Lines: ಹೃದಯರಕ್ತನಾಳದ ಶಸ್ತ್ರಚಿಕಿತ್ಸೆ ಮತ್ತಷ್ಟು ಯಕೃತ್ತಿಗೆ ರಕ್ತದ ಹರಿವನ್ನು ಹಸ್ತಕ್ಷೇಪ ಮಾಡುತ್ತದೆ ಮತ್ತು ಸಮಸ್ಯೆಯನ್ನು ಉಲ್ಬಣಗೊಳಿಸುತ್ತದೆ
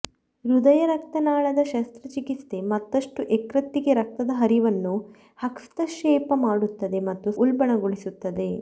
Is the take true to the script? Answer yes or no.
no